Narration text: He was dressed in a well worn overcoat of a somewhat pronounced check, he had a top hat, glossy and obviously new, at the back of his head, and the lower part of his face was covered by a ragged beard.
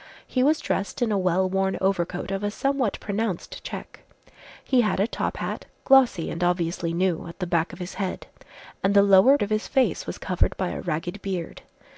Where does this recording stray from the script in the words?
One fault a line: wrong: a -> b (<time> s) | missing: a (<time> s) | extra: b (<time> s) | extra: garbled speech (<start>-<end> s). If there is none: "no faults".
missing: part (9.4 s)